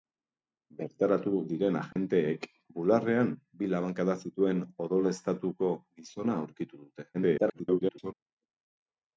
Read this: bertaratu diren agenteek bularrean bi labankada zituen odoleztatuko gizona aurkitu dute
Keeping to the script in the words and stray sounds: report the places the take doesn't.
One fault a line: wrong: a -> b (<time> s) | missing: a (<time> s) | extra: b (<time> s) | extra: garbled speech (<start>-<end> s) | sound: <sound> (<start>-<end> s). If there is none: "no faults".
sound: dropout (1.9-2.0 s)
extra: garbled speech (7.1-8.1 s)